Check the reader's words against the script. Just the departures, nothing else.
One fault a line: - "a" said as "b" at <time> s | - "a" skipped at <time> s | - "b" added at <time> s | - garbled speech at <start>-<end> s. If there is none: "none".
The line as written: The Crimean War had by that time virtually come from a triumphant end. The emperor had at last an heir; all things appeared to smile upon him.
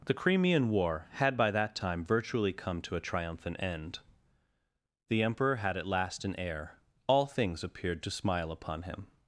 - "from" said as "to" at 2.8 s